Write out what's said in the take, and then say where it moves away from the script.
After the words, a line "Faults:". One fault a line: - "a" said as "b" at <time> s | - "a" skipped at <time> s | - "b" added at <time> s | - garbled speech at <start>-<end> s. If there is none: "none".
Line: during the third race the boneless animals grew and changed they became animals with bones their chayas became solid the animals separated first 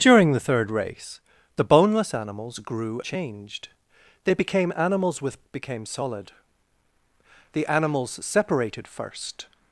during the third race the boneless animals grew changed they became animals with became solid the animals separated first
Faults:
- "and" skipped at 3.0 s
- "bones their chayas" skipped at 5.4 s